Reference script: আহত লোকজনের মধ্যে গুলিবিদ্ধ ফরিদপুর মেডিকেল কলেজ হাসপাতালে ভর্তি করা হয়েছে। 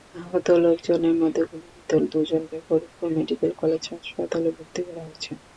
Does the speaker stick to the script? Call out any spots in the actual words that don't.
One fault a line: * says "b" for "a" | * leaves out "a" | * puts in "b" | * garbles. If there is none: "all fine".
* puts in "দুজনকে"